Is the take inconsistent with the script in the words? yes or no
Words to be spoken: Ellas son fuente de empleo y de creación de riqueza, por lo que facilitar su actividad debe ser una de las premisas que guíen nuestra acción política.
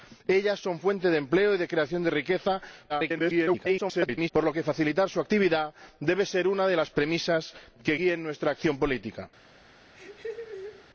yes